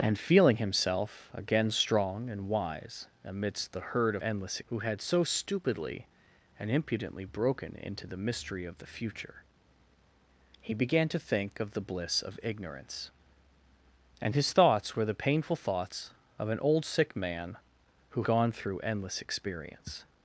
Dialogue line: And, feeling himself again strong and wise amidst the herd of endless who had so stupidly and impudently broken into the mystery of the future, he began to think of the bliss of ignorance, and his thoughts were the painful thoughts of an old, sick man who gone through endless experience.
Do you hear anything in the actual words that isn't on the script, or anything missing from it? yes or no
no